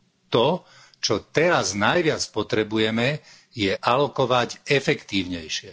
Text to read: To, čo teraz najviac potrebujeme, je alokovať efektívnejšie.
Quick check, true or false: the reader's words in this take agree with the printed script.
true